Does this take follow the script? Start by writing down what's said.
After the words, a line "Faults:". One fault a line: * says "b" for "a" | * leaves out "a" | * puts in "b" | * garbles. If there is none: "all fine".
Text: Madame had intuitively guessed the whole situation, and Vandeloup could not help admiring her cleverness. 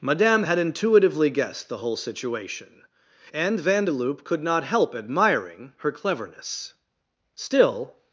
Madame had intuitively guessed the whole situation, and Vandeloup could not help admiring her cleverness. Still
Faults:
* puts in "Still"